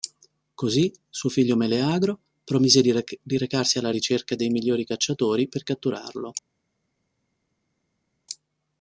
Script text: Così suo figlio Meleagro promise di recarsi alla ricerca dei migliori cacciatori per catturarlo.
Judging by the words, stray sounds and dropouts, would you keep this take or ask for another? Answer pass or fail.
pass